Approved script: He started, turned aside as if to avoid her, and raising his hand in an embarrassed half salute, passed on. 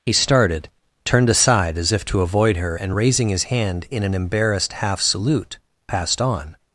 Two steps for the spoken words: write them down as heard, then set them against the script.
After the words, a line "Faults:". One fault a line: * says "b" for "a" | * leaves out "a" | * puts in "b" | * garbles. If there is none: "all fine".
He started, turned aside as if to avoid her, and raising his hand in an embarrassed half salute, passed on.
Faults:
all fine